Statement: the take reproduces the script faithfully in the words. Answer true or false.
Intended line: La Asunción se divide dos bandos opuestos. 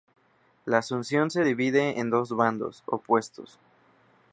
false